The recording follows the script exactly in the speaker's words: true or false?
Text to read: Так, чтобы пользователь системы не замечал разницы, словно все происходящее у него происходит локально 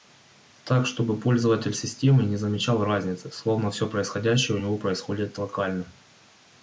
true